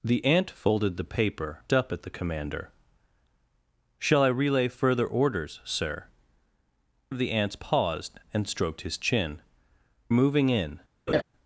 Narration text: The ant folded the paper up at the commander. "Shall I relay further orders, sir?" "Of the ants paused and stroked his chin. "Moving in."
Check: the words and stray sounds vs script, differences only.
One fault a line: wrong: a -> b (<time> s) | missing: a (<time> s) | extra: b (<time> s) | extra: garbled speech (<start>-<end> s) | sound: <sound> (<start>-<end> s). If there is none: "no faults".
sound: laugh (11.1-11.2 s)